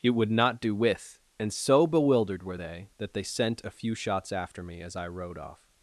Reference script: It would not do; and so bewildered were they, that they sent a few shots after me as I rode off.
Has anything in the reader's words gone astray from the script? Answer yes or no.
yes